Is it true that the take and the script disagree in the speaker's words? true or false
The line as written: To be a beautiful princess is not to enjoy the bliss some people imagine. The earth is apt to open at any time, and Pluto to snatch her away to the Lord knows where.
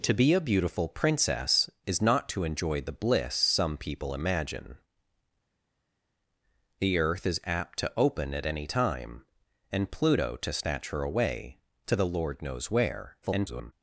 true